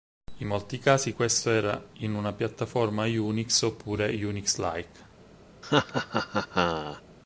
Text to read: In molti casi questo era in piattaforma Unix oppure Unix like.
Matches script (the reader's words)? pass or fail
fail